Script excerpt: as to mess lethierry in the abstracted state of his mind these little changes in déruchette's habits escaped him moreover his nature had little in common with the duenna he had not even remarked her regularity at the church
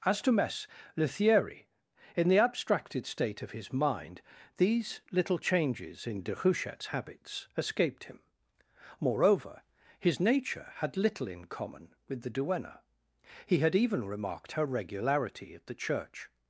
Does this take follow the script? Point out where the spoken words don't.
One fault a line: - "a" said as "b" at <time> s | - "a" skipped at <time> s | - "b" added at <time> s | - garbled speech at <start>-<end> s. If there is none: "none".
- "not" skipped at 13.7 s